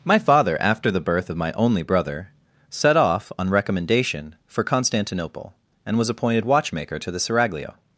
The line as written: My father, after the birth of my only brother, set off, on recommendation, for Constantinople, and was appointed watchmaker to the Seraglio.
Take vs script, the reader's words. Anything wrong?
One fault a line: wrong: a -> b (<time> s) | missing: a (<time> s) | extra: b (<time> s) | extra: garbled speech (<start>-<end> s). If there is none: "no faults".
no faults